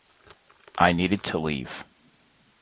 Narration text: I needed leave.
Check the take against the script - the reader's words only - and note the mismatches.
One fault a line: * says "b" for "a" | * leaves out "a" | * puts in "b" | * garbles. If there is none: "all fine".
* puts in "to"